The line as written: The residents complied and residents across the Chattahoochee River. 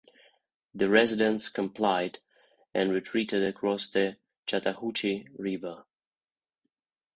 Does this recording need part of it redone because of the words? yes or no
yes